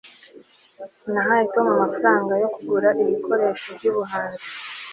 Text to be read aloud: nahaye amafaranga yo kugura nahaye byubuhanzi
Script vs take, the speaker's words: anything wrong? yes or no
yes